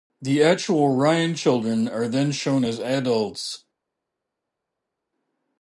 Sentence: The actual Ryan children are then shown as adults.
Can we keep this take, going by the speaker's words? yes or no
yes